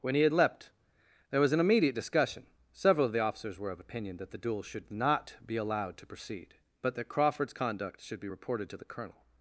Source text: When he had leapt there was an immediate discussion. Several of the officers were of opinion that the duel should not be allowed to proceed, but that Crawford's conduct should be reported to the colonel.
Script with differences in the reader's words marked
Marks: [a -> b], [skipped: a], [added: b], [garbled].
When he had leapt there was an immediate discussion. Several of the officers were of opinion that the duel should not be allowed to proceed, but that Crawford's conduct should be reported to the colonel.